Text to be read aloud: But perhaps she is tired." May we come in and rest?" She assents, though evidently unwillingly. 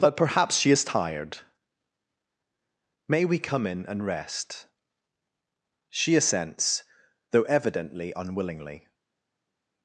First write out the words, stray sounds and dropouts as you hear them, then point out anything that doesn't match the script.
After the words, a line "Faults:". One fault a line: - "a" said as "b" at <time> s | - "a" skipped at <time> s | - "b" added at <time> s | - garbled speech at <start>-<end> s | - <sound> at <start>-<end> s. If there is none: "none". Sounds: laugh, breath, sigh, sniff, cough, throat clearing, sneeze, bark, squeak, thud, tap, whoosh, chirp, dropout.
But perhaps she is tired." May we come in and rest?" She assents, though evidently unwillingly.
Faults:
none